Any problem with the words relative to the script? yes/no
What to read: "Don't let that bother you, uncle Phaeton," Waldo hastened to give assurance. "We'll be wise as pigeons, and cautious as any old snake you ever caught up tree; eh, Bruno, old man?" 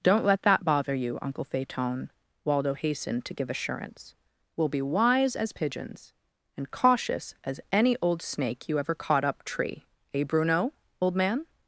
no